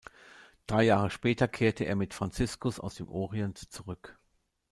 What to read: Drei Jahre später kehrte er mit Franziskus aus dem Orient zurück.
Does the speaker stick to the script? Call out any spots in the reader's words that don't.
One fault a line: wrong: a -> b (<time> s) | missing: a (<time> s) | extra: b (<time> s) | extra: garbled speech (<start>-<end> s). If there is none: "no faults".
no faults